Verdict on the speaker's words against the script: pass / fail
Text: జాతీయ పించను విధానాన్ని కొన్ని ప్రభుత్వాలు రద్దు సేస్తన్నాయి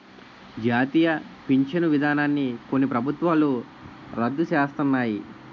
pass